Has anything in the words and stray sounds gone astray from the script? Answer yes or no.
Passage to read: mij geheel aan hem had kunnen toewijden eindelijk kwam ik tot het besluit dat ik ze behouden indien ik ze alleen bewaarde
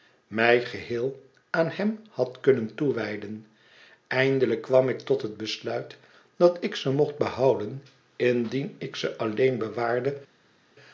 yes